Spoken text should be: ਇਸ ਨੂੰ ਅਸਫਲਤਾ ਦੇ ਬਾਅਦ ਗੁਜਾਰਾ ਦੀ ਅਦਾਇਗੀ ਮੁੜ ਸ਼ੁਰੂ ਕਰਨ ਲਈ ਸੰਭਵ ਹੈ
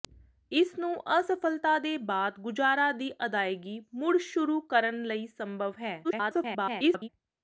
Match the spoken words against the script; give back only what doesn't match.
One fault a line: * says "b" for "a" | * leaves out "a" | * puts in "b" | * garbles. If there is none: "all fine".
* garbles